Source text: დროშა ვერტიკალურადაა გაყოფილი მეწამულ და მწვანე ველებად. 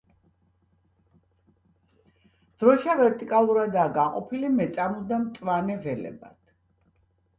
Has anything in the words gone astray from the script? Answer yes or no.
no